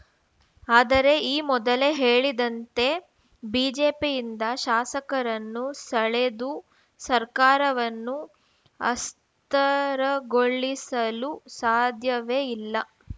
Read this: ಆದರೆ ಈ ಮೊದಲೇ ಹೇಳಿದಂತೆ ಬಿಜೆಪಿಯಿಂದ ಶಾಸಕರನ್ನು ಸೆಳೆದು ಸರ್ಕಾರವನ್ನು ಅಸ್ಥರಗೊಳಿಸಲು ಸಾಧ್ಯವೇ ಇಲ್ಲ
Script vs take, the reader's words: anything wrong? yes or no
no